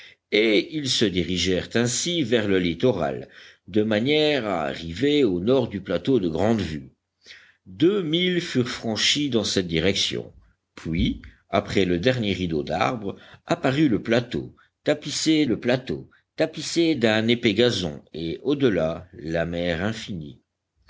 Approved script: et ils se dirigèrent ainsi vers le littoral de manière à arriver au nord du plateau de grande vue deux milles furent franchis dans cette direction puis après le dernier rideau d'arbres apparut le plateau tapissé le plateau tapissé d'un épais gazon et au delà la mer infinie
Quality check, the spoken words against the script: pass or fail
pass